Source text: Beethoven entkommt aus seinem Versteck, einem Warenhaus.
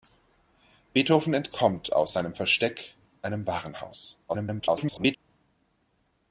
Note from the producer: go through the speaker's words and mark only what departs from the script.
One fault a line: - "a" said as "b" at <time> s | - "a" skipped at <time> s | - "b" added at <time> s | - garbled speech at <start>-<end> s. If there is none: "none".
- garbled speech at 4.3-5.2 s